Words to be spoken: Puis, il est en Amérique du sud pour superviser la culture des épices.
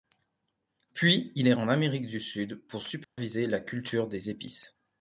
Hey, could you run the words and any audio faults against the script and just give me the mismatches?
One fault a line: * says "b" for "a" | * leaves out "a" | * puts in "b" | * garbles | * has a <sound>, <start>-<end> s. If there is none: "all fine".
* has a dropout, 3.0-3.2 s